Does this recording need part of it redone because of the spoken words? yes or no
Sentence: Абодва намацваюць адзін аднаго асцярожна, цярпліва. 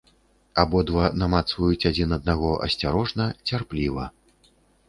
no